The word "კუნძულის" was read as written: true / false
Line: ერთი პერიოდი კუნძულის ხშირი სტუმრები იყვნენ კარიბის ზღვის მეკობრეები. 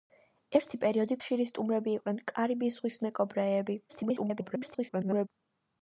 false